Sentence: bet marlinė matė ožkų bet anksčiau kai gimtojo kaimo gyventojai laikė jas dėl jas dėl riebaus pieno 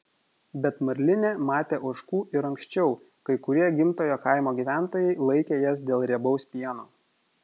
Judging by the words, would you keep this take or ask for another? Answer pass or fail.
fail